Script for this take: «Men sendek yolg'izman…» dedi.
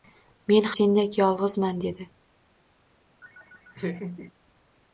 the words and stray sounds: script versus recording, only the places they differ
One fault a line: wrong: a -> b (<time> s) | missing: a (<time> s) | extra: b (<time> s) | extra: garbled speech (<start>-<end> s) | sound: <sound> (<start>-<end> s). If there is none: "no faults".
sound: laugh (3.2-4.3 s)